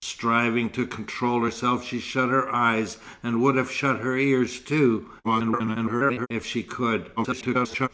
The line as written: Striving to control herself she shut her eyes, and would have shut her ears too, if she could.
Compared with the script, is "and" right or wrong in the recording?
right